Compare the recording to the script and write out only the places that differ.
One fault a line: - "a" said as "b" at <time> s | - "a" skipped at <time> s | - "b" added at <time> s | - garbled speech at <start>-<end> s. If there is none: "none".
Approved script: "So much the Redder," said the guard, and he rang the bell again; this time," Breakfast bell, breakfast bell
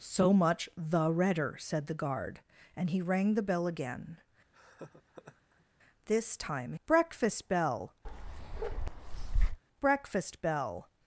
none